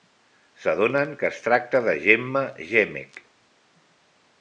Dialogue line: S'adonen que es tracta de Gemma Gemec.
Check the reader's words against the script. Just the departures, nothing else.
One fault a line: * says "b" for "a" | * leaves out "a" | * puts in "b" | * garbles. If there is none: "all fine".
all fine